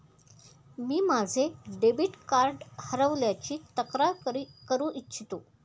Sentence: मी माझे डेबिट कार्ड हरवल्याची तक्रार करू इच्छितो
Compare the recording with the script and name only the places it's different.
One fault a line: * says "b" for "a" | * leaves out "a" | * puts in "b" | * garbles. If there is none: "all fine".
all fine